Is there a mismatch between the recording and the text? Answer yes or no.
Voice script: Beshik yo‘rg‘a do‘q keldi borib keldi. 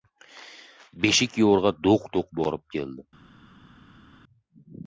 yes